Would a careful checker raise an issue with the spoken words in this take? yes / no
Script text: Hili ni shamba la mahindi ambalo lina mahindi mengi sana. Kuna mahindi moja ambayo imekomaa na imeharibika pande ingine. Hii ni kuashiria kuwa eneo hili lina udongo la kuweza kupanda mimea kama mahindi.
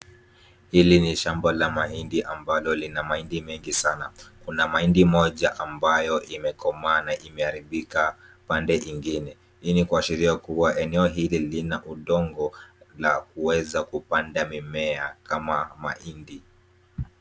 no